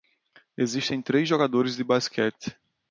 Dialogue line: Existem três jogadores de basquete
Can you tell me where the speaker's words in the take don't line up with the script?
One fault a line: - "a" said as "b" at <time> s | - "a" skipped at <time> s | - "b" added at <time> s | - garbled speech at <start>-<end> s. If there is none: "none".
none